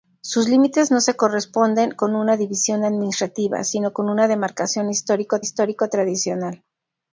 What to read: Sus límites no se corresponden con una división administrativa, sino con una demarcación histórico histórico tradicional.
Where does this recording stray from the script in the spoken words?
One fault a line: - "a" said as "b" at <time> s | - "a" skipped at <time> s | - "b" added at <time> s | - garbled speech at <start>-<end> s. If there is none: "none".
none